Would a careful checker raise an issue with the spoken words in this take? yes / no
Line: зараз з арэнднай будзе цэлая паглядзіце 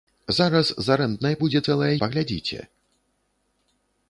no